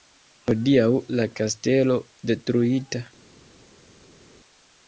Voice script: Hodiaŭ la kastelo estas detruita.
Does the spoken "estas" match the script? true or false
false